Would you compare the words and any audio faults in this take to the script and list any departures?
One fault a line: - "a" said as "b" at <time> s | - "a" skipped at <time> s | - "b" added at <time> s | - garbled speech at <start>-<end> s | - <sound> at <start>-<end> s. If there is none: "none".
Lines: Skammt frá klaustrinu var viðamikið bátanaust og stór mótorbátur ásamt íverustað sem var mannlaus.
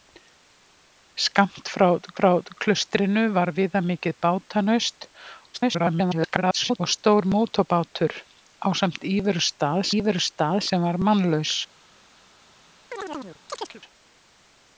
- "frá" added at 2.2 s
- garbled speech at 5.5-6.8 s
- "íverustað" added at 10.0 s
- chirp at 12.9-13.8 s